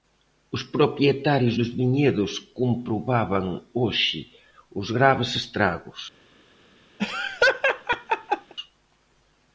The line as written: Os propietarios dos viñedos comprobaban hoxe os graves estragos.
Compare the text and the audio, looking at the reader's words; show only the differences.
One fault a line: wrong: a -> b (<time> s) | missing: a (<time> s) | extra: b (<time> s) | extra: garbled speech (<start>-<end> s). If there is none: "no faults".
no faults